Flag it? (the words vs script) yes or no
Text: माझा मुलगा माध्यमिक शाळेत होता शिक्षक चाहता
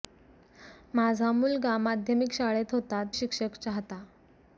no